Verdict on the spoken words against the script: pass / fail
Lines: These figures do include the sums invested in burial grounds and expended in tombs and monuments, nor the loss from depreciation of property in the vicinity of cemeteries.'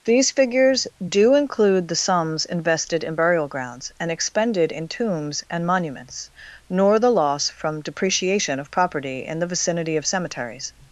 pass